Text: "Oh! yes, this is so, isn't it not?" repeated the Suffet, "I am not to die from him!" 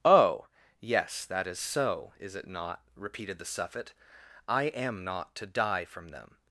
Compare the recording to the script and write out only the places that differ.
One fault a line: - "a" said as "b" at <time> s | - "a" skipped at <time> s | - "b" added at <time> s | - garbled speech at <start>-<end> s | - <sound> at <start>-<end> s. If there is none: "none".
- "this" said as "that" at 1.2 s
- "isn't" said as "is" at 2.2 s
- "him" said as "them" at 6.1 s